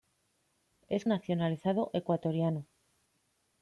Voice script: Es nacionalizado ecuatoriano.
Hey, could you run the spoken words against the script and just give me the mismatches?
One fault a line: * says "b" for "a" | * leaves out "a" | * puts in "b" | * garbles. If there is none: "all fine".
all fine